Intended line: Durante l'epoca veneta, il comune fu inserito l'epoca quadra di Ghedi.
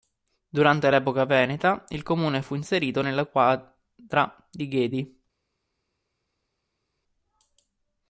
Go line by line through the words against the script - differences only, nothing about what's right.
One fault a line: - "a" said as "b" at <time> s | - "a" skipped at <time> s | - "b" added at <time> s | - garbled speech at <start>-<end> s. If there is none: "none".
- "l'epoca" said as "nella" at 3.0 s